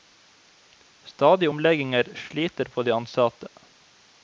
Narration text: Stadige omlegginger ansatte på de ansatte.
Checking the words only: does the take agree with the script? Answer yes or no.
no